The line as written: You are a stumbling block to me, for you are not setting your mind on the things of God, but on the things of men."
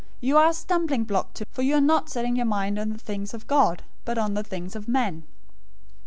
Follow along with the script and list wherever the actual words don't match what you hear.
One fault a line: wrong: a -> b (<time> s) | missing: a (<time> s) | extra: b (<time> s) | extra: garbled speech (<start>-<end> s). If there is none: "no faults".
missing: me (1.4 s)